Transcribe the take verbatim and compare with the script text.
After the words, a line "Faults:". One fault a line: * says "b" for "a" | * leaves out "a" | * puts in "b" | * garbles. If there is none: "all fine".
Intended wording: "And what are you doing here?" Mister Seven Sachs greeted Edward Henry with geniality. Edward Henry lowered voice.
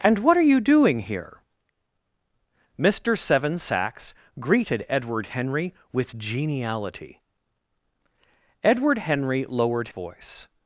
"And what are you doing here?" Mister Seven Sachs greeted Edward Henry with geniality. Edward Henry lowered voice.
Faults:
all fine